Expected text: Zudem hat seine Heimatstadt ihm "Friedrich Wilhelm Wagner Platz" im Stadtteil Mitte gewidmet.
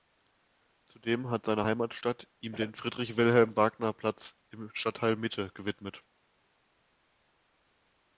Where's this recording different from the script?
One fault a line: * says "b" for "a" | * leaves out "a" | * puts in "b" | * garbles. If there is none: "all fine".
* puts in "den"